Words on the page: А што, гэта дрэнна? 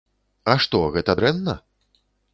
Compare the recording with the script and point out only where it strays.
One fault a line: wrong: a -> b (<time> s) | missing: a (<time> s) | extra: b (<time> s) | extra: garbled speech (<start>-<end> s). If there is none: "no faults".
no faults